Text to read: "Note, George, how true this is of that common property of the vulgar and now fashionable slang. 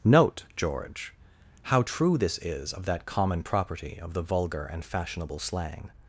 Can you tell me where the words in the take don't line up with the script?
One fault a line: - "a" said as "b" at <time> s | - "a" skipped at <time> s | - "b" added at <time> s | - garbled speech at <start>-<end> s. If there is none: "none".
- "now" skipped at 4.8 s